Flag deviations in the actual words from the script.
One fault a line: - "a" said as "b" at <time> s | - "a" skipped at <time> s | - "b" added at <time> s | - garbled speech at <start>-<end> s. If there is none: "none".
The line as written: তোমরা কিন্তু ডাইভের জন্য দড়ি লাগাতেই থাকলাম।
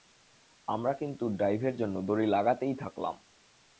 - "তোমরা" said as "আমরা" at 0.7 s